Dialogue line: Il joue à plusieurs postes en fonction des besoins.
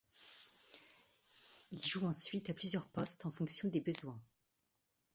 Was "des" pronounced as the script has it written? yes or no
yes